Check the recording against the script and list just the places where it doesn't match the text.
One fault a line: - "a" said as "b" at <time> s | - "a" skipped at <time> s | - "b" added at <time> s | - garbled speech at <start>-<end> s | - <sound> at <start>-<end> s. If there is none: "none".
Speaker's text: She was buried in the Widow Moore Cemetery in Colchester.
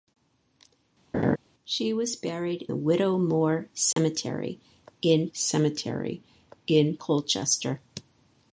- laugh at 1.1-1.4 s
- "in" skipped at 2.7 s
- dropout at 3.9-4.0 s
- "Cemetery in" added at 5.3 s